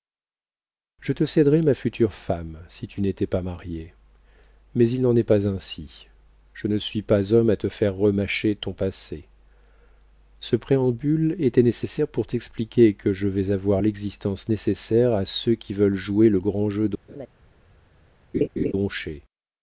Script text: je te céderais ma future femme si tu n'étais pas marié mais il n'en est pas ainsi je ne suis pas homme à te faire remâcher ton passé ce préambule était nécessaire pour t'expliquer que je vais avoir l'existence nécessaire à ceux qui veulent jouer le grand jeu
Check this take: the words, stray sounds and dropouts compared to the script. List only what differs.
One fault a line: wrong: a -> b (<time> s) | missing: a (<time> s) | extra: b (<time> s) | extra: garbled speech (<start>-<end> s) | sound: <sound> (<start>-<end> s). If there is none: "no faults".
sound: laugh (17.1-17.3 s)
sound: laugh (18.3-18.7 s)